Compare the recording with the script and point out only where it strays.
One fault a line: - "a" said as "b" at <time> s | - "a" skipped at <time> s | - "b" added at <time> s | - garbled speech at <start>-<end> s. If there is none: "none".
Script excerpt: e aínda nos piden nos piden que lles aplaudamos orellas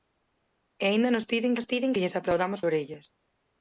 none